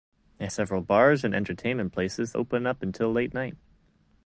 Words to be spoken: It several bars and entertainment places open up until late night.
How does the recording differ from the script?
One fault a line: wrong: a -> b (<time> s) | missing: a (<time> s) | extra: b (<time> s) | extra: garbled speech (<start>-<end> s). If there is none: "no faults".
no faults